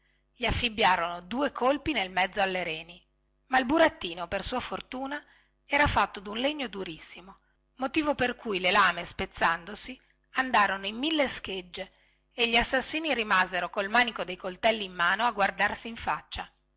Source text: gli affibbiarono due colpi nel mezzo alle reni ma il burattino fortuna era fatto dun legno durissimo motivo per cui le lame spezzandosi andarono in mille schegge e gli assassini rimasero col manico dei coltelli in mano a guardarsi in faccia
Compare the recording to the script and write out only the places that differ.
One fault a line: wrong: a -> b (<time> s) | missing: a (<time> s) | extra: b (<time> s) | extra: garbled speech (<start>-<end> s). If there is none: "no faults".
extra: per sua (4.3 s)